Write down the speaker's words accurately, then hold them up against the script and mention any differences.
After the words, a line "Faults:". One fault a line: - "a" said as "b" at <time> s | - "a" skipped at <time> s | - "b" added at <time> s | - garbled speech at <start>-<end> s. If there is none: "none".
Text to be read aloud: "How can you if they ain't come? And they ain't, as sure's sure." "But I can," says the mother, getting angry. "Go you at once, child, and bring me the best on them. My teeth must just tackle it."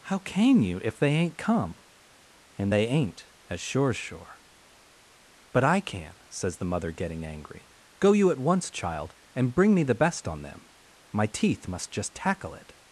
"How can you if they ain't come? And they ain't, as sure's sure." "But I can," says the mother, getting angry. "Go you at once, child, and bring me the best on them. My teeth must just tackle it."
Faults:
none